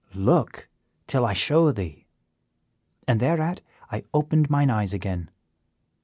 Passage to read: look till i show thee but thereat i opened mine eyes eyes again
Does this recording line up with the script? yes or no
no